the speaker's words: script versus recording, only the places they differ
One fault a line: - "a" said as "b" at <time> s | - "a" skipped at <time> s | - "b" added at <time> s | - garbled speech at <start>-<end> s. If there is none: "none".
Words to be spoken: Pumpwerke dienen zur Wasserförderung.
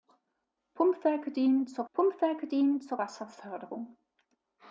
- "pumpwerke dienen zur" added at 1.9 s